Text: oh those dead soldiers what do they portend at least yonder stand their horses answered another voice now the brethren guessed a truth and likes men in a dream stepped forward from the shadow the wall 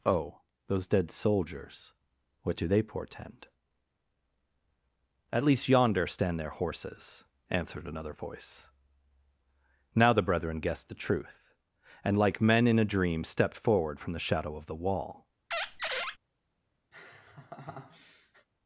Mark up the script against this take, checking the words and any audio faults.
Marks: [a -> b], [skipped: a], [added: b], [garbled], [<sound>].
oh those dead soldiers what do they portend at least yonder stand their horses answered another voice now the brethren guessed [a -> the] truth and [likes -> like] men in a dream stepped forward from the shadow [added: of] the wall [squeak] [laugh]